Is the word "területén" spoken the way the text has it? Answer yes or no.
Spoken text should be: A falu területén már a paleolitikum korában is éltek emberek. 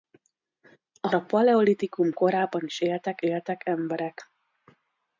no